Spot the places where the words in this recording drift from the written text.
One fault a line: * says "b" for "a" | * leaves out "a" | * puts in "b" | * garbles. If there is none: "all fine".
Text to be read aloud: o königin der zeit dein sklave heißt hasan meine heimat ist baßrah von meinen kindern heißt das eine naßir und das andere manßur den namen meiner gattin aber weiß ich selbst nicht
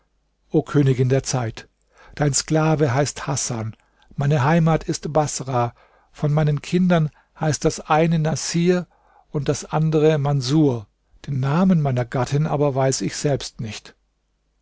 all fine